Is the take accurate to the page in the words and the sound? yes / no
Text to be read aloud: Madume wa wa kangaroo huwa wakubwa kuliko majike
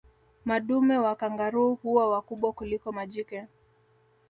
no